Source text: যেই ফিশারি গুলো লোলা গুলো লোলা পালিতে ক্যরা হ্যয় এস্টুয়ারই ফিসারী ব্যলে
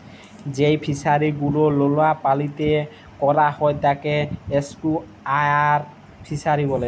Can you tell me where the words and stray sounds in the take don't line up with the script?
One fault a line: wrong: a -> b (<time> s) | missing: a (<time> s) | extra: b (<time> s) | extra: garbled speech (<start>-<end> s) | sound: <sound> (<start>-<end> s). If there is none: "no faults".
missing: গুলো লোলা (2.1 s)
extra: তাকে (3.8 s)